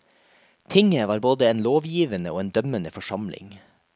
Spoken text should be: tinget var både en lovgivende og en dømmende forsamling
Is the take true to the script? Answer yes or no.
yes